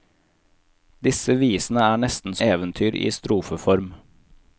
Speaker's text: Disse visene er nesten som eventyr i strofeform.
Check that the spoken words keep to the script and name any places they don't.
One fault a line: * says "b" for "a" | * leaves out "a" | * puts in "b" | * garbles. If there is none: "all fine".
* leaves out "som"